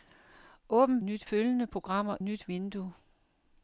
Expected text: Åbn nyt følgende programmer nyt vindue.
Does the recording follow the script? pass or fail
pass